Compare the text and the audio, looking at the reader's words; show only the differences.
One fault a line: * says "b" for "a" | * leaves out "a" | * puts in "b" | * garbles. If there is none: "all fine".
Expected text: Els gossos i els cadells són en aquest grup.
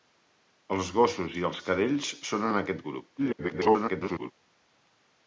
* garbles